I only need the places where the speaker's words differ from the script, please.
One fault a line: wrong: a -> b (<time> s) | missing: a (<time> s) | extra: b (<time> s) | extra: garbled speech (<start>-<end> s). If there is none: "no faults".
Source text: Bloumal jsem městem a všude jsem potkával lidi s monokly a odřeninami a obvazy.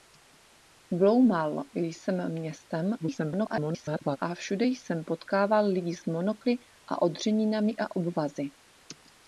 extra: garbled speech (3.0-4.2 s)